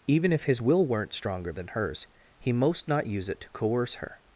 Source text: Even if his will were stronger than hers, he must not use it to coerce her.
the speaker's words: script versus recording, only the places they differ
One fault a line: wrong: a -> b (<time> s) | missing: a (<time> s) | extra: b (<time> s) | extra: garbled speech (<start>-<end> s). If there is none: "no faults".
wrong: were -> weren't (0.8 s)
wrong: must -> most (2.5 s)